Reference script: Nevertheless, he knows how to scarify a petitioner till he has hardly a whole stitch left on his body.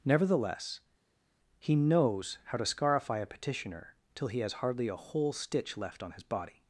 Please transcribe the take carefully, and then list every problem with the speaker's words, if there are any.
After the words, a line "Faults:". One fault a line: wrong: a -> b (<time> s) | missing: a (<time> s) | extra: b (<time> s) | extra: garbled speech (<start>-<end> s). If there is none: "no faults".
Nevertheless, he knows how to scarify a petitioner till he has hardly a whole stitch left on his body.
Faults:
no faults